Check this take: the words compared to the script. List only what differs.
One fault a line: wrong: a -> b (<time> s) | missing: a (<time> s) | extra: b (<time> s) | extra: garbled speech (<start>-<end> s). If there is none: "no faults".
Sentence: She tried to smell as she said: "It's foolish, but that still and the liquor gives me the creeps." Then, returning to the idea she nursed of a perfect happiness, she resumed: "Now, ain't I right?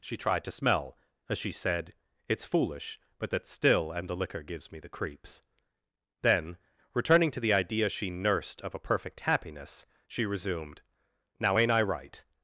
no faults